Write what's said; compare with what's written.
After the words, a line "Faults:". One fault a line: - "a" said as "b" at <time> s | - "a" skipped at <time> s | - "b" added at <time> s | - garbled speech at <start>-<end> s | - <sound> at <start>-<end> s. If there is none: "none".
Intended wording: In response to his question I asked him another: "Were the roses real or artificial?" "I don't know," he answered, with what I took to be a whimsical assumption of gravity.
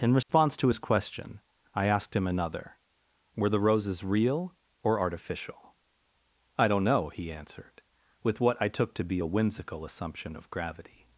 In response to his question I asked him another: "Were the roses real or artificial?" "I don't know," he answered, with what I took to be a whimsical assumption of gravity.
Faults:
- dropout at 0.2-0.3 s